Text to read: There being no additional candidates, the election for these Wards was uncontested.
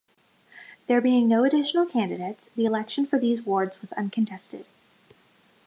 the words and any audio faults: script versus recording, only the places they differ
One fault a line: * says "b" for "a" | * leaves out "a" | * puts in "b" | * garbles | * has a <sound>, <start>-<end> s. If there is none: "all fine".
all fine